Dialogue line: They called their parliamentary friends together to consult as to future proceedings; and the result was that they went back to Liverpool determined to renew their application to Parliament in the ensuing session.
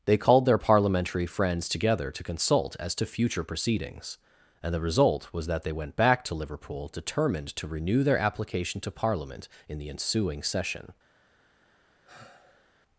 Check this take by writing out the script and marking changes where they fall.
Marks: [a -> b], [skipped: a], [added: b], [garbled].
They called their parliamentary friends together to consult as to future proceedings; and the result was that they went back to Liverpool determined to renew their application to Parliament in the ensuing session.